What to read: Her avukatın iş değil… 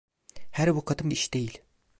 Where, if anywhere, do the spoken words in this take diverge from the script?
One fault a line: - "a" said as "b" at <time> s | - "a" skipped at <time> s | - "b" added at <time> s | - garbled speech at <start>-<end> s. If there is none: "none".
none